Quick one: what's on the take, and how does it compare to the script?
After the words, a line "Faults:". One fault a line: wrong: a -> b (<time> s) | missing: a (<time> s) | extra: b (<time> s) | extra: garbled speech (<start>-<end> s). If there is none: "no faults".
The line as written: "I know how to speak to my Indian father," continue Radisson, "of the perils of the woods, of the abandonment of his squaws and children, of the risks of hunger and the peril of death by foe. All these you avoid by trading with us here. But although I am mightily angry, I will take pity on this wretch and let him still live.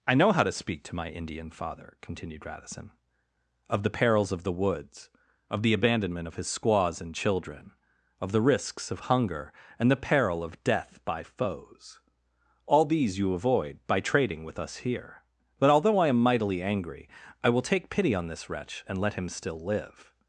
"I know how to speak to my Indian father," continued Radisson, "of the perils of the woods, of the abandonment of his squaws and children, of the risks of hunger and the peril of death by foes. All these you avoid by trading with us here. But although I am mightily angry, I will take pity on this wretch and let him still live.
Faults:
wrong: continue -> continued (2.0 s)
wrong: foe -> foes (11.2 s)